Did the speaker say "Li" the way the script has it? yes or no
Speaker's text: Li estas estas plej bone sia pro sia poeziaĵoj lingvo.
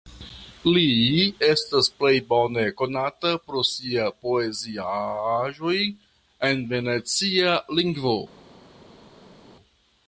yes